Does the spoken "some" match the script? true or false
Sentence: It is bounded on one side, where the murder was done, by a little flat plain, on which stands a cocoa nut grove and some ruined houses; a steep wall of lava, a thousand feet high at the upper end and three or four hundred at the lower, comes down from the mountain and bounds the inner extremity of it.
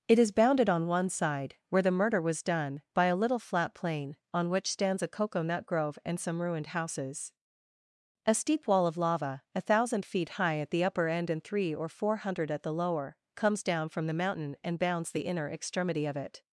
true